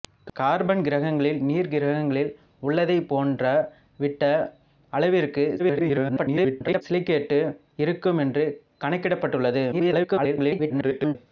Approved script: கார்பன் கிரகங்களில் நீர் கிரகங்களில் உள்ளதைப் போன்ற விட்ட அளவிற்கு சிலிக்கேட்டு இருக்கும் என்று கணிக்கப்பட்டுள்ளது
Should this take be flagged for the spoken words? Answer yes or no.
yes